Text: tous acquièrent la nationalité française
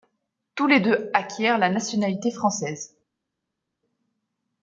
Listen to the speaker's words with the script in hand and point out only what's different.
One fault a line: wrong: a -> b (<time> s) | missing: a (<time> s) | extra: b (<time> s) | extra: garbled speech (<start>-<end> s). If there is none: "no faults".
extra: les deux (0.7 s)